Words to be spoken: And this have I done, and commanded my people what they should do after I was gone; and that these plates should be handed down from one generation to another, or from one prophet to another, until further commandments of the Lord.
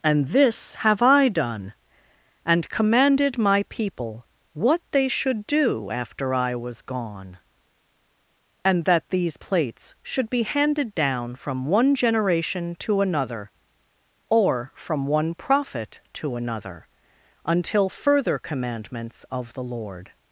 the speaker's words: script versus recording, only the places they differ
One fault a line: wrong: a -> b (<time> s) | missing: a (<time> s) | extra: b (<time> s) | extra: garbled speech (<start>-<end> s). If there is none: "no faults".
no faults